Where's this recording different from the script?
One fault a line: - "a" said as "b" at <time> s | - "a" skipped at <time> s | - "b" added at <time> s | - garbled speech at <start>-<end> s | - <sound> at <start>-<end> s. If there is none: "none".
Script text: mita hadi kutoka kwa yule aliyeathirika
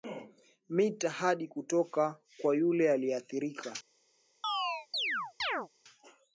- chirp at 4.4-5.7 s